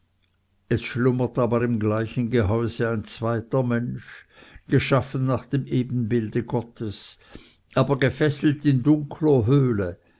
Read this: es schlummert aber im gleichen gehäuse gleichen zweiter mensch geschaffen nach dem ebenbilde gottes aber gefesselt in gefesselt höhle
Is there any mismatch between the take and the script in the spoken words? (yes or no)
yes